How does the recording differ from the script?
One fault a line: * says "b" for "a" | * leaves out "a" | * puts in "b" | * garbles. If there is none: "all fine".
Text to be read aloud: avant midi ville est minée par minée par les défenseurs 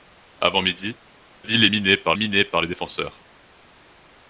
all fine